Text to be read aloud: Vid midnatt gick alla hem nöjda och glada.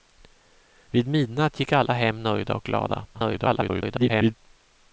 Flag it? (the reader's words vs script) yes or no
yes